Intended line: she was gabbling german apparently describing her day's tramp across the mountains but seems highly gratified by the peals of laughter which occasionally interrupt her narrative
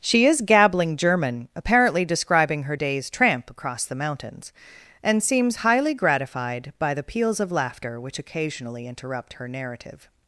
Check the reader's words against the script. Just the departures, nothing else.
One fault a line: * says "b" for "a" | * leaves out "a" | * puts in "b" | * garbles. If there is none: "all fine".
* says "is" for "was"
* says "and" for "but"